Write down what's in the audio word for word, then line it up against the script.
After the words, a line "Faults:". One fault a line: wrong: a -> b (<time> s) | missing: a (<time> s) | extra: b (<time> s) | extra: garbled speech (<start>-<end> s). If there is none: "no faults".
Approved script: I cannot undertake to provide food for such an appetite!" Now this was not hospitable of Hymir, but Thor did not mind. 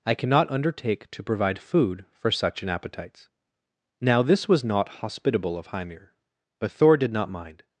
I cannot undertake to provide food for such an appetites!" Now this was not hospitable of Hymir, but Thor did not mind.
Faults:
wrong: appetite -> appetites (2.7 s)